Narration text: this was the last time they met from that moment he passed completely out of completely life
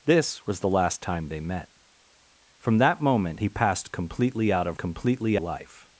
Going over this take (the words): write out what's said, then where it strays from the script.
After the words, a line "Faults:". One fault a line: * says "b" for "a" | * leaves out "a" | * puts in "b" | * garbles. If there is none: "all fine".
this was the last time they met from that moment he passed completely out of completely life
Faults:
all fine